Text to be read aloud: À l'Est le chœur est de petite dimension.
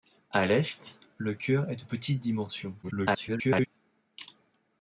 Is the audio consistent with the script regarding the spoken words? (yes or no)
no